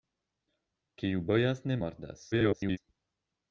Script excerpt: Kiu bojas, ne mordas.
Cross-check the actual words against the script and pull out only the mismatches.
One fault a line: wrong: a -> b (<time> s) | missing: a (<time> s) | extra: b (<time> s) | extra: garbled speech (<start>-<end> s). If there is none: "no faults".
extra: garbled speech (2.3-2.8 s)